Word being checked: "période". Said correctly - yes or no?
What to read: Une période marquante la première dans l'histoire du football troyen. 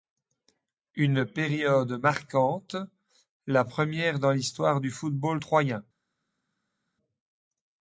yes